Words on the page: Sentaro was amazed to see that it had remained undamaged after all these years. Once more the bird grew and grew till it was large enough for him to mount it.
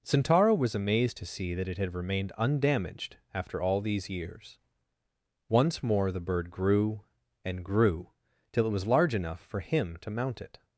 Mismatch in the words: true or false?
false